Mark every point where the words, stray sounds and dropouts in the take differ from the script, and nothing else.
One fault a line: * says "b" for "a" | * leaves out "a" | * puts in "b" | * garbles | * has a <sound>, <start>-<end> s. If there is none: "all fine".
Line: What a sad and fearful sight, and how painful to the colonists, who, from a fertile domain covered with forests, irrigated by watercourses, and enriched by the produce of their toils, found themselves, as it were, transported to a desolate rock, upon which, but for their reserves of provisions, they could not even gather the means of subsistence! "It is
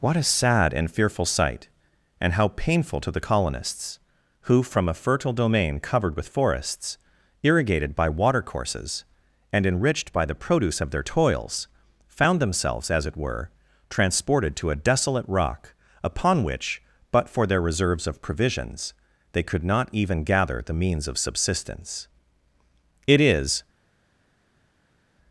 all fine